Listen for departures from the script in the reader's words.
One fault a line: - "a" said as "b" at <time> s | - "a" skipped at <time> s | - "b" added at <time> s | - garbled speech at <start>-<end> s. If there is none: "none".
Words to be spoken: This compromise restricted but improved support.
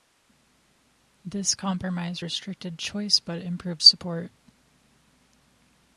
- "choice" added at 2.8 s